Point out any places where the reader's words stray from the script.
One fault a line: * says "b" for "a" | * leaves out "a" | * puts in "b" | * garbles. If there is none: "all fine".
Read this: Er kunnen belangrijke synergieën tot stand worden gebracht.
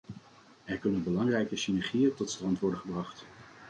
all fine